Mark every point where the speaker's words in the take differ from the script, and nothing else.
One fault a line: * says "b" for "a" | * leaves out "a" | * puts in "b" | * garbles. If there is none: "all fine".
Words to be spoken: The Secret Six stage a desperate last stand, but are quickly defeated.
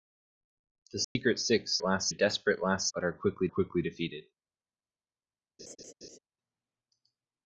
* says "last" for "stage"
* leaves out "stand"
* puts in "quickly"